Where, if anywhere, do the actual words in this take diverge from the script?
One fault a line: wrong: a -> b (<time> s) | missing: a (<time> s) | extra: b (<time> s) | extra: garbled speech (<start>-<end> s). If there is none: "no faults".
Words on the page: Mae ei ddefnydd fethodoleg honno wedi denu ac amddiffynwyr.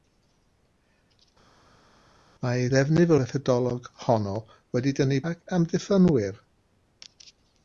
no faults